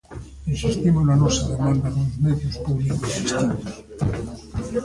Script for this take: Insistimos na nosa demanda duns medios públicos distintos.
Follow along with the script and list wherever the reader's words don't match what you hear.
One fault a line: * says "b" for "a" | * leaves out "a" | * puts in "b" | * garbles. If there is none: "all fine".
all fine